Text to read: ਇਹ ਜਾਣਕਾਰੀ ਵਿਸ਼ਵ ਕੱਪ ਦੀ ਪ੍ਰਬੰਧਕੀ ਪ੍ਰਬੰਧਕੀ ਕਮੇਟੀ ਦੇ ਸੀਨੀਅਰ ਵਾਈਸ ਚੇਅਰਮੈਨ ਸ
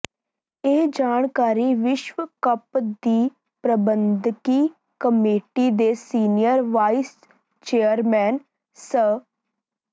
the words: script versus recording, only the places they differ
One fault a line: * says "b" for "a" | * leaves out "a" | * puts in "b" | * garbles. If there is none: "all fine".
* leaves out "ਪ੍ਰਬੰਧਕੀ"